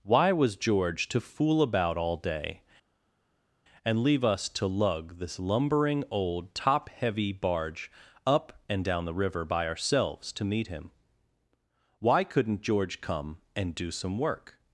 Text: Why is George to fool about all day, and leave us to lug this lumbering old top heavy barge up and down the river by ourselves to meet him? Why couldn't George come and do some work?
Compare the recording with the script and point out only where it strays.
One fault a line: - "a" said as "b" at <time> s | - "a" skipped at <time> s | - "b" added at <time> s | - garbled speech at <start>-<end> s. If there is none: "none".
- "is" said as "was" at 0.3 s